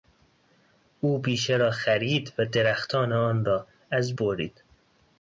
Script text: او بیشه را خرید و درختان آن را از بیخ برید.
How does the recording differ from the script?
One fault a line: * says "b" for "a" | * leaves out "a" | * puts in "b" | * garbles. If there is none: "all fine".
* leaves out "بیخ"